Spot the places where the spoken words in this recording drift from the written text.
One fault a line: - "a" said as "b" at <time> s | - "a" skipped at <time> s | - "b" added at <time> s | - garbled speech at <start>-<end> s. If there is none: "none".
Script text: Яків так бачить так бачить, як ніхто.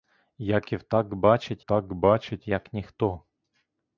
none